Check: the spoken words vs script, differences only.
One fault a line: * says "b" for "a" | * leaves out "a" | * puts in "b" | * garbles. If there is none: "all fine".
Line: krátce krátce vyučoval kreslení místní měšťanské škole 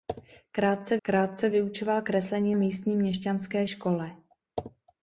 all fine